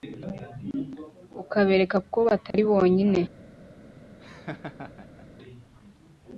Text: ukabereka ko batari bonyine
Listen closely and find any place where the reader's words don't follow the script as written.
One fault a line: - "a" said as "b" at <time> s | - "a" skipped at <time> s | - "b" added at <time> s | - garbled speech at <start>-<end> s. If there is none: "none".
none